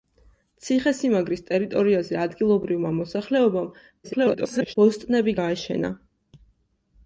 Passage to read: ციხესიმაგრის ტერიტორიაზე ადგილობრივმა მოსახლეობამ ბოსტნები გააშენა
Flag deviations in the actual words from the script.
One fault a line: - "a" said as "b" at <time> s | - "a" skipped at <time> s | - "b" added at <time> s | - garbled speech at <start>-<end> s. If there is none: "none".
- garbled speech at 4.0-4.7 s